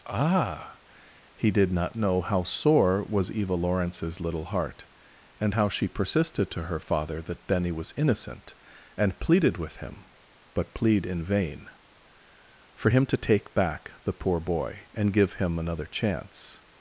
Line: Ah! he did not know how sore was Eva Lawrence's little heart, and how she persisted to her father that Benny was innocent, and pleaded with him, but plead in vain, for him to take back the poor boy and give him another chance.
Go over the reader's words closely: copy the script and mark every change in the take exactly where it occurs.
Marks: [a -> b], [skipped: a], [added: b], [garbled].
Ah! he did not know how sore was Eva Lawrence's little heart, and how she persisted to her father that Benny was innocent, and pleaded with him, but plead in vain, for him to take back the poor boy and give him another chance.